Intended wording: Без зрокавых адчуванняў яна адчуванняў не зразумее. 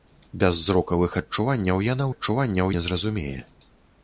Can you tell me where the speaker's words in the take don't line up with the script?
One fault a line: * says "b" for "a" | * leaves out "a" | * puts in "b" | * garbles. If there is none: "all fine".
all fine